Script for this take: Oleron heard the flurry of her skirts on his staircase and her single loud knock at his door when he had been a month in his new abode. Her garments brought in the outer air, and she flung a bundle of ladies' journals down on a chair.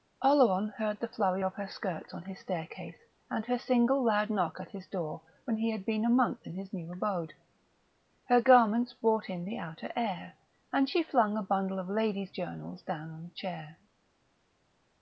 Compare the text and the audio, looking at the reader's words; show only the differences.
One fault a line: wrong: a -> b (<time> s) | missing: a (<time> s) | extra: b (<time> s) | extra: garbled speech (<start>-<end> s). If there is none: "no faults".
no faults